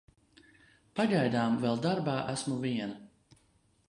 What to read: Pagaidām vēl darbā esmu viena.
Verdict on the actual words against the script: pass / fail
pass